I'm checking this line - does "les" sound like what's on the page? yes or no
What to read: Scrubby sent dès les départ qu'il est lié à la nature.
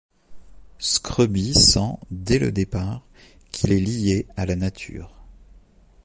no